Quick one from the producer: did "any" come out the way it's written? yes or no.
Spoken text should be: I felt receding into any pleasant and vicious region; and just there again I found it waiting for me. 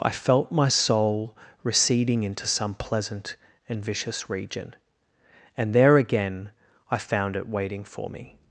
no